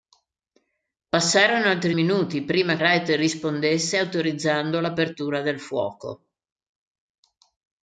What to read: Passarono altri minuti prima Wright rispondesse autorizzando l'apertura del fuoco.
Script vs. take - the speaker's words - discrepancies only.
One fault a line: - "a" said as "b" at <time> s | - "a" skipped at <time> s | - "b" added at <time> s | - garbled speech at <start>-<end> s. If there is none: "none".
none